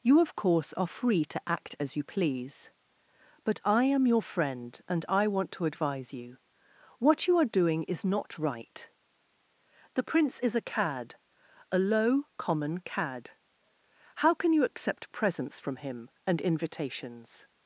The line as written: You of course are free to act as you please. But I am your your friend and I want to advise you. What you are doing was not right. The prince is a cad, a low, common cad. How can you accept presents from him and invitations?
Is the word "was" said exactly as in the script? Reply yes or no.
no